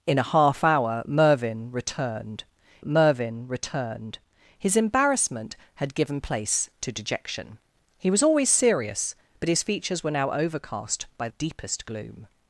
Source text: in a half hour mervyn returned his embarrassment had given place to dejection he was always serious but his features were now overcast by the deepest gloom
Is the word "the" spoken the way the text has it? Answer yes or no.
no